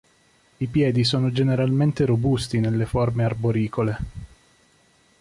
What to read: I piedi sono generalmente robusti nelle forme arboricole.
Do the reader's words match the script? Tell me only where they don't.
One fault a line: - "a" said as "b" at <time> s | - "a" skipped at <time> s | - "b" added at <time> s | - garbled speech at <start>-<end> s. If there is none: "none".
none